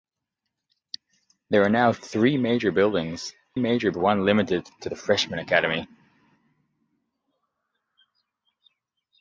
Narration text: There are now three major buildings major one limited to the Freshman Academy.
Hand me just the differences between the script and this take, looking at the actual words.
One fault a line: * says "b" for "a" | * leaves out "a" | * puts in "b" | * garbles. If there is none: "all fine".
all fine